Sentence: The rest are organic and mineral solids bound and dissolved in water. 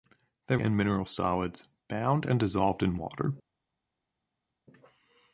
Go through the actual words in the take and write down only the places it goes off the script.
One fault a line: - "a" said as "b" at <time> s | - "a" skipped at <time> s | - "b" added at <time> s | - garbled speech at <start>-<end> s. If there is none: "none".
- "rest are organic" skipped at 0.6 s